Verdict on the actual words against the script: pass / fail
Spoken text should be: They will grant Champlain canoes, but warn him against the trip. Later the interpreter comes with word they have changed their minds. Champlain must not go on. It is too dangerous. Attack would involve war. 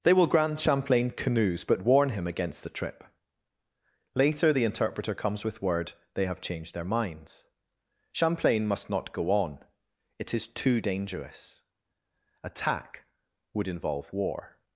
pass